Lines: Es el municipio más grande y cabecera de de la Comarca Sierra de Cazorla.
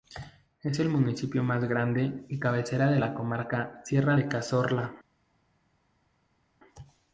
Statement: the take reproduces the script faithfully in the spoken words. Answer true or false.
false